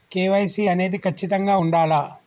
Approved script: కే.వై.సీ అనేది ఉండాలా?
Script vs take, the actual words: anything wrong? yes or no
yes